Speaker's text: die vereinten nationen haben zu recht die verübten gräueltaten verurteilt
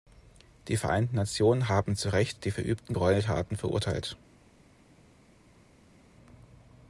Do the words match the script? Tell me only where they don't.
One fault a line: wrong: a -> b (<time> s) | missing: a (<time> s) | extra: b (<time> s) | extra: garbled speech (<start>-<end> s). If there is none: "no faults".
no faults